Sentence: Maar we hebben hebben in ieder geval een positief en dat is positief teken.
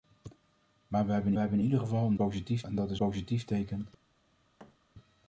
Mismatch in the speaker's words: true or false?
false